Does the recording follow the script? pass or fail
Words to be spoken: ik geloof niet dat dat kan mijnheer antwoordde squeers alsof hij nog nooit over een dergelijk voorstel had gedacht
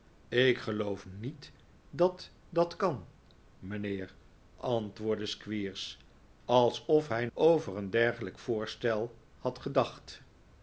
fail